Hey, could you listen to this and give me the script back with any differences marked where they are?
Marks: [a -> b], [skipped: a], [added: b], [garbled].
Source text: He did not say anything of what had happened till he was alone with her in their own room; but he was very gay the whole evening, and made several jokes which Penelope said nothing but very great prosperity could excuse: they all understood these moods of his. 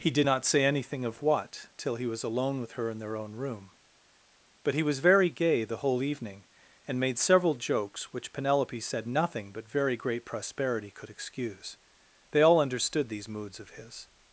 He did not say anything of what [skipped: had happened] till he was alone with her in their own room; but he was very gay the whole evening, and made several jokes which Penelope said nothing but very great prosperity could excuse: they all understood these moods of his.